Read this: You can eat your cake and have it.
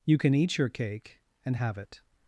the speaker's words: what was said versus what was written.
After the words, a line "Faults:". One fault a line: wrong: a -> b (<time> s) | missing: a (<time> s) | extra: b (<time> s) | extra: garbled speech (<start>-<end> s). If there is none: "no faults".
You can eat your cake and have it.
Faults:
no faults